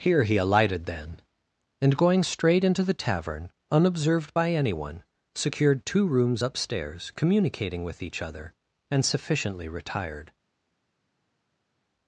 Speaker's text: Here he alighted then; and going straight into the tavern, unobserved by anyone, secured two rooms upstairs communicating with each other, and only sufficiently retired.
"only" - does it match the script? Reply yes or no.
no